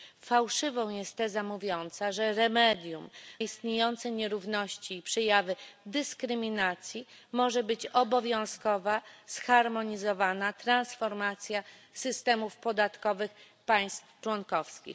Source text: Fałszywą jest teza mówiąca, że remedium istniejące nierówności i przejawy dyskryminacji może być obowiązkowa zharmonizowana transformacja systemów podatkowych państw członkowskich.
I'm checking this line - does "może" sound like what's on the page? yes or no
yes